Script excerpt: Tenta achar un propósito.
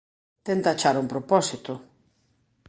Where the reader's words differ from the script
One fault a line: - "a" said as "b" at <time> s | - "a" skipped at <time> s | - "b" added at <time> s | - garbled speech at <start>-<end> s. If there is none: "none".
none